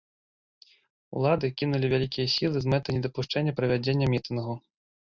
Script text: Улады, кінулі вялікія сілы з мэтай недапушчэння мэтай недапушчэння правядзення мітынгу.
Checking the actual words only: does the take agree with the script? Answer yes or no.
no